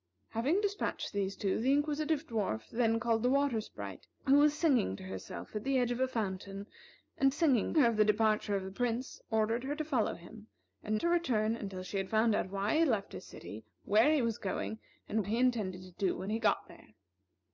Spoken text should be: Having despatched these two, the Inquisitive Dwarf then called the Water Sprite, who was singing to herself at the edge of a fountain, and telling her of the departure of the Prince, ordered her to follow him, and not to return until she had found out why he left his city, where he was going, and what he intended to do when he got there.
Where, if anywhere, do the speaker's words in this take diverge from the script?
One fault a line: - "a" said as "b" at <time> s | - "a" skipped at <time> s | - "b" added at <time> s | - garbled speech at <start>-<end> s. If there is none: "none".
- "telling" said as "singing" at 7.3 s
- "not" skipped at 11.0 s
- "what" skipped at 15.2 s